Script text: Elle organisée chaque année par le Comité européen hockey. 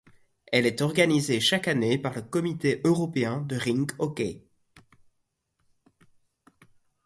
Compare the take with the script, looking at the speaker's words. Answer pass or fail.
fail